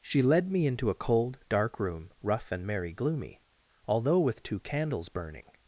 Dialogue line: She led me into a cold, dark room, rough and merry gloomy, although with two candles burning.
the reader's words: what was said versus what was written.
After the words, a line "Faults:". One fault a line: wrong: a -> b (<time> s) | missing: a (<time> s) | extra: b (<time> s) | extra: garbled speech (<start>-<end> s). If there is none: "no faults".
She led me into a cold, dark room, rough and merry gloomy, although with two candles burning.
Faults:
no faults